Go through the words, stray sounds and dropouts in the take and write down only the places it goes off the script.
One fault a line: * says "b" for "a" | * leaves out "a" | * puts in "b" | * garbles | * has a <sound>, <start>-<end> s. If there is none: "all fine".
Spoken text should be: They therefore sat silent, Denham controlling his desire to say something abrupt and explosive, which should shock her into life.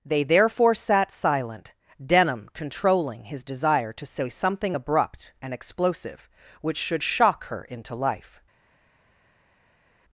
all fine